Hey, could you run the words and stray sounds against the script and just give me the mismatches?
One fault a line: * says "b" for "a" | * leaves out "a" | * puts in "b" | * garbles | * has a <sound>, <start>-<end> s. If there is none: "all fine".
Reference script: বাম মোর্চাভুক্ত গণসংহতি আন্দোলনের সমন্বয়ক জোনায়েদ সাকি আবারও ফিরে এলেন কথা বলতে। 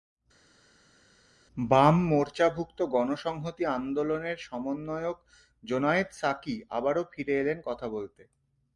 all fine